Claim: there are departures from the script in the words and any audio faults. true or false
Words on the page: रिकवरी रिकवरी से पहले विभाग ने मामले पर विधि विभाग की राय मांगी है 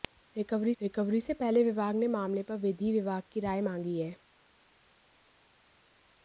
false